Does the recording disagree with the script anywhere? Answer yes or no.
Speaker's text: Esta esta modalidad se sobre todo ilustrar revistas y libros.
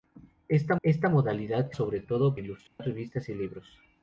no